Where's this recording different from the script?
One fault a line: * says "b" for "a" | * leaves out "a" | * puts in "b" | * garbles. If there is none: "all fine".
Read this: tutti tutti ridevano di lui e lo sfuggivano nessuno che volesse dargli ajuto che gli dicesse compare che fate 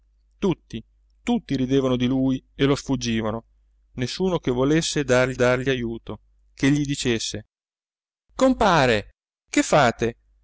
* puts in "dargli"